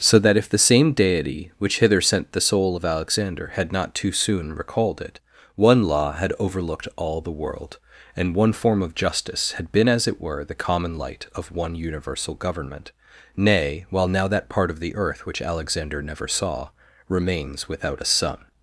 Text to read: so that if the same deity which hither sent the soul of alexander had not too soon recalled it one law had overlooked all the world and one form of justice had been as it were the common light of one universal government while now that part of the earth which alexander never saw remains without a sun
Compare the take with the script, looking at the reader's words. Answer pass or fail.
fail